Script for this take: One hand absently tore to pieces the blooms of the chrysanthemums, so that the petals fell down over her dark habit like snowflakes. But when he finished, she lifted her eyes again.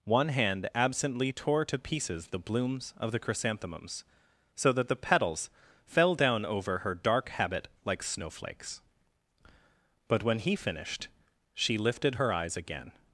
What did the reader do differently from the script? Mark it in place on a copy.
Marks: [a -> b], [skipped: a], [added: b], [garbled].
One hand absently tore to pieces the blooms of the chrysanthemums, so that the petals fell down over her dark habit like snowflakes. But when he finished, she lifted her eyes again.